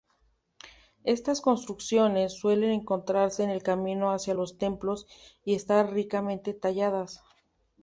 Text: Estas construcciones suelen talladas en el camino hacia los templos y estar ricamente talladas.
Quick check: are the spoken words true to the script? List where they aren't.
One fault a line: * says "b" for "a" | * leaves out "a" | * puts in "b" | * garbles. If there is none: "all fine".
* says "encontrarse" for "talladas"